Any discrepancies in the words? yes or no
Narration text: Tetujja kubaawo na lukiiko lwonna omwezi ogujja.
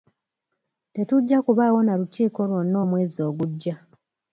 no